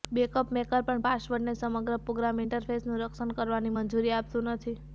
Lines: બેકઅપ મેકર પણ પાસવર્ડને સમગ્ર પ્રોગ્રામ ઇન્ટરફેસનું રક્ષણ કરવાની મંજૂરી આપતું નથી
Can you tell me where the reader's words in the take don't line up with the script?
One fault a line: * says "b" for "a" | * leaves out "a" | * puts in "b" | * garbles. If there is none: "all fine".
all fine